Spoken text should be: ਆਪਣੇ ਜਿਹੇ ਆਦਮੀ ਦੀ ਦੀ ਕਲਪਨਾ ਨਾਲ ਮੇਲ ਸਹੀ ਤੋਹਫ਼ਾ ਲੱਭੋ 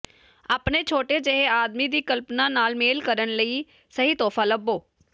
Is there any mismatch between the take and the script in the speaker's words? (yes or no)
yes